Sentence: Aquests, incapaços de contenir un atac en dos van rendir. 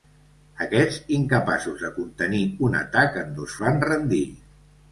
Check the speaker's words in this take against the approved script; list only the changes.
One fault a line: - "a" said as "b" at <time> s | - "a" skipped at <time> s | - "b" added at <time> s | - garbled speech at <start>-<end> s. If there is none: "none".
none